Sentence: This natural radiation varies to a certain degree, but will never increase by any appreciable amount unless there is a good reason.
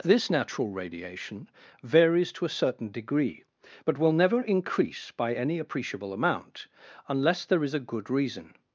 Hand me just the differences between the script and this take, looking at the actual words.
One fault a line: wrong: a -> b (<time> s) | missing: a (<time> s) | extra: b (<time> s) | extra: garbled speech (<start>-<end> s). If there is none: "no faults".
no faults